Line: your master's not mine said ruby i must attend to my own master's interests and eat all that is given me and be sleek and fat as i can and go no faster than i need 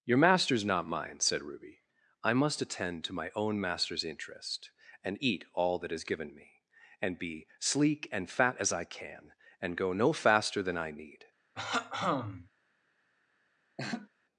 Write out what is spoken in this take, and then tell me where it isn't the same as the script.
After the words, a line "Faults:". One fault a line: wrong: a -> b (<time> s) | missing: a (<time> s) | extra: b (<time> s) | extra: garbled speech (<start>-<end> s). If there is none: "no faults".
your master's not mine said ruby i must attend to my own master's interest and eat all that is given me and be sleek and fat as i can and go no faster than i need
Faults:
wrong: interests -> interest (4.0 s)